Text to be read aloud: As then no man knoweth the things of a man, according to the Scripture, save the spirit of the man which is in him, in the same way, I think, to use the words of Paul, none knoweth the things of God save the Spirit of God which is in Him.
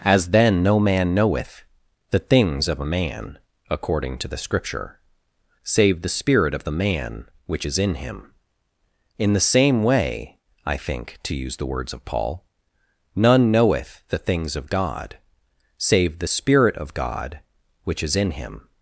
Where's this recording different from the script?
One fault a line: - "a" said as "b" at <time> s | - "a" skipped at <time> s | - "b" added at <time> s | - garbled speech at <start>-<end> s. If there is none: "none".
none